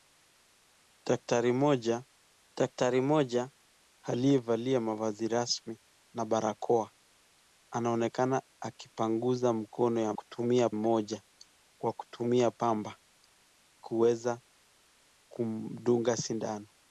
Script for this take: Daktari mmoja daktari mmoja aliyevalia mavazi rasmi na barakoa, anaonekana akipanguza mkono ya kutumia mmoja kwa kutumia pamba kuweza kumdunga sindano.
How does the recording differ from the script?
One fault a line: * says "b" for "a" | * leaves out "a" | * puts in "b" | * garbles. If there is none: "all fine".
all fine